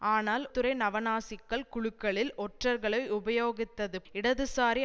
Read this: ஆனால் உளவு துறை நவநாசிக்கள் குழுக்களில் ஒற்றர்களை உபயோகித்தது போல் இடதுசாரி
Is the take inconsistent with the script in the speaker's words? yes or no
yes